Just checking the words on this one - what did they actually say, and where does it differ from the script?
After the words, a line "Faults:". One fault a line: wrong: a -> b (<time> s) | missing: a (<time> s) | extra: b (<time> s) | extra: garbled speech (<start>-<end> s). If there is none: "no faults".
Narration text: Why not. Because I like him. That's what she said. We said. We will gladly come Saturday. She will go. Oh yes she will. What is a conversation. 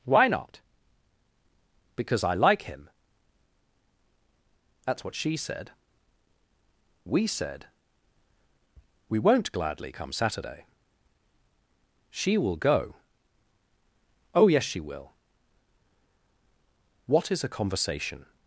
Why not. Because I like him. That's what she said. We said. We won't gladly come Saturday. She will go. Oh yes she will. What is a conversation.
Faults:
wrong: will -> won't (9.2 s)